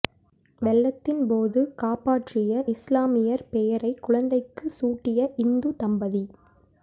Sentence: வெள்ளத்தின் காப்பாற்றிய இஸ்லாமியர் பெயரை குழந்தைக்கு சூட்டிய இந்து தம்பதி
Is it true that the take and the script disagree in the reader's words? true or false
true